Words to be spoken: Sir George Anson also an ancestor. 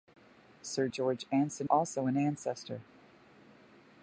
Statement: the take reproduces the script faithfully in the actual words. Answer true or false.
true